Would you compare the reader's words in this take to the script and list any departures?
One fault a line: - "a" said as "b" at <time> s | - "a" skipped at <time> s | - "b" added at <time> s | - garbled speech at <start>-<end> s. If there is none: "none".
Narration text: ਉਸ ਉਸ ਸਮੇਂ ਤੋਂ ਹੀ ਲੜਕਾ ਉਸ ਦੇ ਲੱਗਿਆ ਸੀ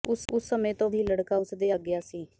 none